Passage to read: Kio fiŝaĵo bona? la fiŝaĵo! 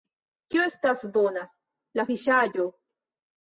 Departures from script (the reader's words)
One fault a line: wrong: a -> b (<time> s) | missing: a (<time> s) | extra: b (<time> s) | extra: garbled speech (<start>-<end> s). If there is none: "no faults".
wrong: fiŝaĵo -> estas (0.7 s)